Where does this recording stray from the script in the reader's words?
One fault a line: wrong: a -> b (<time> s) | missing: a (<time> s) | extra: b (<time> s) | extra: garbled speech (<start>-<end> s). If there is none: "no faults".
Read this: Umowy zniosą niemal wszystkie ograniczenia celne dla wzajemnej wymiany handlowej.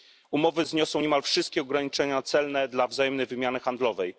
no faults